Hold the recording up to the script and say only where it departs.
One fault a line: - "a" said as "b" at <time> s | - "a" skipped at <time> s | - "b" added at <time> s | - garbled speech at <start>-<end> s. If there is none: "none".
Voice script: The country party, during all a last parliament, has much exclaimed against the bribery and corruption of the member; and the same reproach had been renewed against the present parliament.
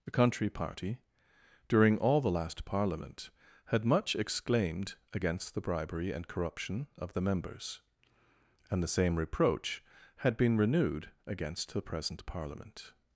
- "a" said as "the" at 2.2 s
- "has" said as "had" at 3.6 s
- "member" said as "members" at 7.2 s